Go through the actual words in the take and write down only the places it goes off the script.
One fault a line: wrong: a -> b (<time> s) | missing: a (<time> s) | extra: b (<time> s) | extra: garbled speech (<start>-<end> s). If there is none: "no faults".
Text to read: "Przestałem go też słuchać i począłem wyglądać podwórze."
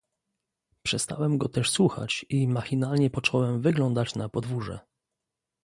extra: machinalnie (2.5 s)
extra: na (4.1 s)